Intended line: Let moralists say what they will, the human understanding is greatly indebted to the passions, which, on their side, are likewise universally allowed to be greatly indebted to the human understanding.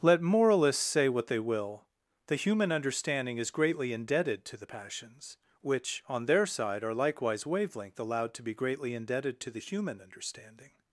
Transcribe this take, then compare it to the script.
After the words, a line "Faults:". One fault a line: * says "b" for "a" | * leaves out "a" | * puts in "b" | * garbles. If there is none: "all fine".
Let moralists say what they will, the human understanding is greatly indebted to the passions, which, on their side, are likewise wavelength allowed to be greatly indebted to the human understanding.
Faults:
* says "wavelength" for "universally"